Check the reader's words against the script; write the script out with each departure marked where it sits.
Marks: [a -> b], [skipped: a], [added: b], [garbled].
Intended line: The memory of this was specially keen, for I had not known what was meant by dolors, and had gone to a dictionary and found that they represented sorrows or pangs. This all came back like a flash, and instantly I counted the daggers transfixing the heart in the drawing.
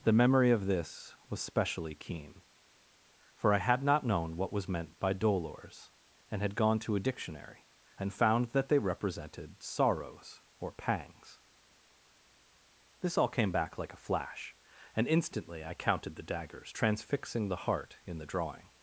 The memory of this was specially keen, for I had not known what was meant by dolors, and had gone to a dictionary and found that they represented sorrows or pangs. This all came back like a flash, and instantly I counted the daggers transfixing the heart in the drawing.